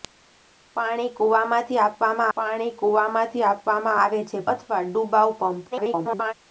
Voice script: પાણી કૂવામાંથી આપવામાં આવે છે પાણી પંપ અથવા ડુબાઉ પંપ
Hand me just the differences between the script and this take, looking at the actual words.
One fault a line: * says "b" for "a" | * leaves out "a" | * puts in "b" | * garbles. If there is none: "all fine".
* puts in "પાણી કૂવામાંથી આપવામાં"
* leaves out "પાણી પંપ"
* garbles